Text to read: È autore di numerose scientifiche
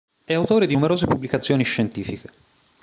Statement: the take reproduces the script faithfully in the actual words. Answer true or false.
false